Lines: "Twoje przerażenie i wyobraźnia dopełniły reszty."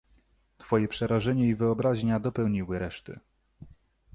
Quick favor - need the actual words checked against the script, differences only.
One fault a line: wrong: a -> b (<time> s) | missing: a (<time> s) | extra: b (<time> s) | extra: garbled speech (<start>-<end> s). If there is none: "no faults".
no faults